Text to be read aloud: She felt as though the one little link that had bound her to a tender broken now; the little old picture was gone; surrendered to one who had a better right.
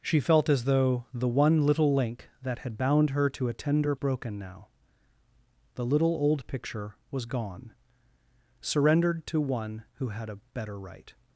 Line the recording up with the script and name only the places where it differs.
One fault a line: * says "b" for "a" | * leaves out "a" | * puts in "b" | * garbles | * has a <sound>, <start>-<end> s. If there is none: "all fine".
all fine